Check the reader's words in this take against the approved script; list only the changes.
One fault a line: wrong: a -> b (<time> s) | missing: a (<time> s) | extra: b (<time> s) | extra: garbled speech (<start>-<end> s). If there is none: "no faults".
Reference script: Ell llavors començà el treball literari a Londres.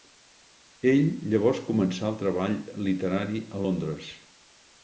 no faults